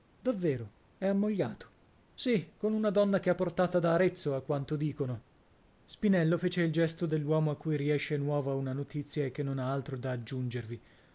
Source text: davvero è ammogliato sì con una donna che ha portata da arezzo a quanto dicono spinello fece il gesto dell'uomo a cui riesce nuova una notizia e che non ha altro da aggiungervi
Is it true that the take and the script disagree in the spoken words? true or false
false